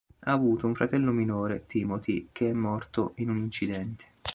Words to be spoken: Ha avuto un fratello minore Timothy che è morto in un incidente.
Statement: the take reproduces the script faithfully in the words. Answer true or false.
true